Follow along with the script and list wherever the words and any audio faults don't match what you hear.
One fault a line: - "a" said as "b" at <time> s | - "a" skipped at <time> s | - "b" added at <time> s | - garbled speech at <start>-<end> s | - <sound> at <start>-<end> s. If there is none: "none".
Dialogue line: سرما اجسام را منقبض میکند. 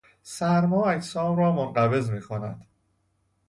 none